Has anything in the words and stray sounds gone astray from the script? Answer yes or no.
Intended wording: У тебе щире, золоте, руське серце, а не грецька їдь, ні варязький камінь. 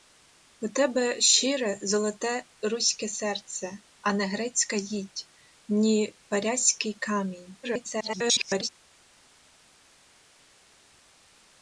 yes